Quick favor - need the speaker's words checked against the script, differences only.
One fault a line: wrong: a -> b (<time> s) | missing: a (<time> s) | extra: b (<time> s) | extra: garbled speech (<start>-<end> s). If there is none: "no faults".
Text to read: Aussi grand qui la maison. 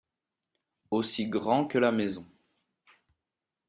wrong: qui -> que (1.7 s)